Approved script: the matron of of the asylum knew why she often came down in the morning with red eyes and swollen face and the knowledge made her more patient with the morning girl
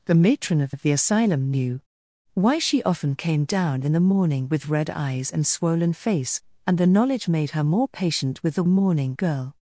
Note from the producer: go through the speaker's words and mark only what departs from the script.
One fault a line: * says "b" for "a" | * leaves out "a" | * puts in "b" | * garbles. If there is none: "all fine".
all fine